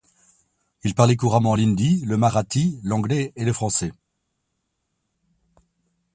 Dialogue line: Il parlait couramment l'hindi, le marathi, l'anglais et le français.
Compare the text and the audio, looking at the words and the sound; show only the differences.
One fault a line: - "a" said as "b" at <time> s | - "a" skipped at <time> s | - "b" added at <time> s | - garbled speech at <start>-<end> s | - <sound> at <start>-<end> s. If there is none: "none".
none